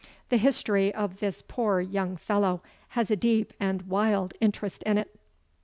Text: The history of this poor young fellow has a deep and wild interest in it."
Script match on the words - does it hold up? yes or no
yes